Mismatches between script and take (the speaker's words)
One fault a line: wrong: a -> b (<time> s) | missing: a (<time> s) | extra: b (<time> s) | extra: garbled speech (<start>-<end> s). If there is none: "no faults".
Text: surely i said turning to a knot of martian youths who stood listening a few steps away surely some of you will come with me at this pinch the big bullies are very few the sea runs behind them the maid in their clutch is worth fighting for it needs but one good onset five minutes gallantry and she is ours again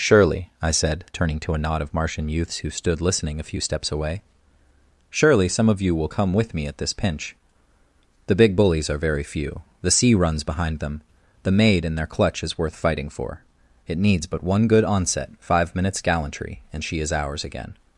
no faults